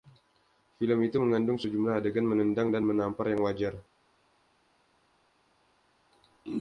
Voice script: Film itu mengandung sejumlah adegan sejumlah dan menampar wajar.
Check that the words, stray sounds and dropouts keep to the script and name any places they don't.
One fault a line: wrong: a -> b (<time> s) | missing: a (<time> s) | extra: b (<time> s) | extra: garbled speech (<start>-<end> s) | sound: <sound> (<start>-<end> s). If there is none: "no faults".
wrong: sejumlah -> menendang (2.2 s)
extra: yang (3.3 s)